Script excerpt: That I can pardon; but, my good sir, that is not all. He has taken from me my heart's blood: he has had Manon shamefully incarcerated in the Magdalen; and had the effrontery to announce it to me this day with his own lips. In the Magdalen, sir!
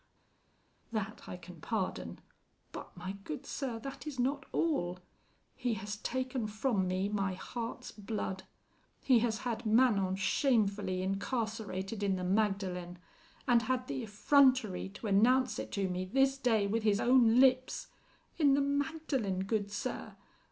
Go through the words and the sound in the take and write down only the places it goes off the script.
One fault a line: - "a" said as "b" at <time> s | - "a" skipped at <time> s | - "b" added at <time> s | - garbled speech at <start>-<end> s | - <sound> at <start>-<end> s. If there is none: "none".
- "good" added at 19.4 s